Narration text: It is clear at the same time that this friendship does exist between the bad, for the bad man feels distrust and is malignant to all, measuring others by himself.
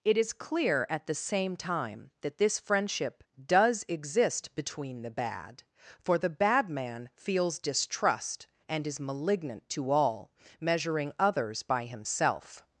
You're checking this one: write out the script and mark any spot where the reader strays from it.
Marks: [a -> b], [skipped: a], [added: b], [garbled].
It is clear at the same time that this friendship does exist between the bad, for the bad man feels distrust and is malignant to all, measuring others by himself.